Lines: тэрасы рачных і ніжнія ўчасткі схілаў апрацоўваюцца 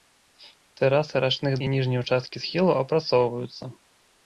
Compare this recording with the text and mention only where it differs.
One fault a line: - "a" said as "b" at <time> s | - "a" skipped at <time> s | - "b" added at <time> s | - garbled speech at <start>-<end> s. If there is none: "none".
none